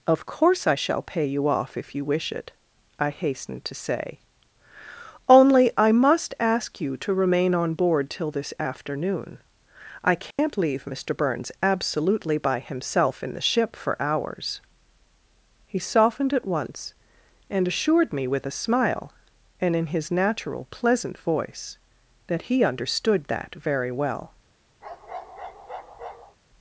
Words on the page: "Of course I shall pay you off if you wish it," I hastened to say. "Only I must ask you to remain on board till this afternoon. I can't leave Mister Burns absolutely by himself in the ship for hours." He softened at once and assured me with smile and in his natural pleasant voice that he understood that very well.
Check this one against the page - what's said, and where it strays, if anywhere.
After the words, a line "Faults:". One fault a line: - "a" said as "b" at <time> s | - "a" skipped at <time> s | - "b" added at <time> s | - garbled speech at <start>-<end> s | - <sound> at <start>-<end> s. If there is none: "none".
"Of course I shall pay you off if you wish it," I hastened to say. "Only I must ask you to remain on board till this afternoon. I can't leave Mister Burns absolutely by himself in the ship for hours." He softened at once and assured me with a smile and in his natural pleasant voice that he understood that very well.
Faults:
- dropout at 10.3-10.4 s
- "a" added at 18.5 s
- bark at 24.8-26.4 s